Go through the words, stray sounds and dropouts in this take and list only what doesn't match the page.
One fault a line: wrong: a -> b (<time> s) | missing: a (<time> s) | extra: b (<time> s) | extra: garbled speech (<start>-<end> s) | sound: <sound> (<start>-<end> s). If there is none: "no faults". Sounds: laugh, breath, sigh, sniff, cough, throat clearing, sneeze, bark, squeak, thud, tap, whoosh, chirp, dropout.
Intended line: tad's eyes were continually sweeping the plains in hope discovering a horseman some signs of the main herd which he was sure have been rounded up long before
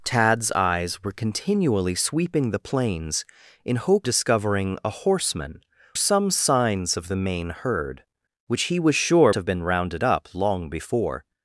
no faults